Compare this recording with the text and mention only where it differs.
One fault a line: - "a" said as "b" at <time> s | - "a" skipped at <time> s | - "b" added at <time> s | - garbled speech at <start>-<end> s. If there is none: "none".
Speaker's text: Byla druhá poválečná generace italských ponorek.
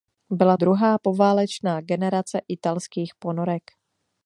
none